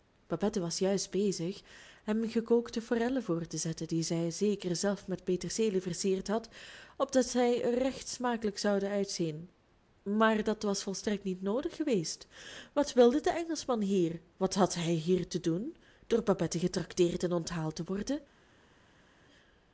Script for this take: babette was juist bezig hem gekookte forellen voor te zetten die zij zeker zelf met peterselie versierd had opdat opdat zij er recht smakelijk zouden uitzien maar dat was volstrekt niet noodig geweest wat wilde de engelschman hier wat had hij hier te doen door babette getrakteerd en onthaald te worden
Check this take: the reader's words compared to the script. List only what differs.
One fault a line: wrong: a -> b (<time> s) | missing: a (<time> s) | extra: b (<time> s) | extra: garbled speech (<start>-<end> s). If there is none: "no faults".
missing: opdat (7.2 s)